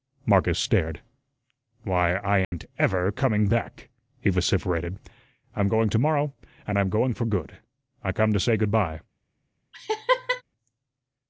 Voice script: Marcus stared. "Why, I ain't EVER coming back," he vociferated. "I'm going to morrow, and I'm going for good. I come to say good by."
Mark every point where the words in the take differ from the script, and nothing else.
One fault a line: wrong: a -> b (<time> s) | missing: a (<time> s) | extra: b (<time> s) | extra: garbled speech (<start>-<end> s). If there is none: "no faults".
no faults